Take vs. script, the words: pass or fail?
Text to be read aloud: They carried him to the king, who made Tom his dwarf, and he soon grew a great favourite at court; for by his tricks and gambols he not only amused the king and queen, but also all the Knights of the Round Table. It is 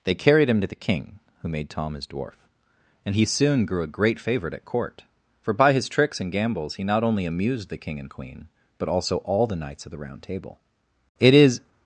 pass